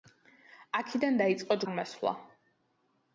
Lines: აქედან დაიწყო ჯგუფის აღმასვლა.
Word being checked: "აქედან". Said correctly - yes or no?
yes